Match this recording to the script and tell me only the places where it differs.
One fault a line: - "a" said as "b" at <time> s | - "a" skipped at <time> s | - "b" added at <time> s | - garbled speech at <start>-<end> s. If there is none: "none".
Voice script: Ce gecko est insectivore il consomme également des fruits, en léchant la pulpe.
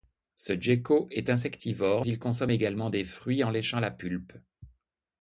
none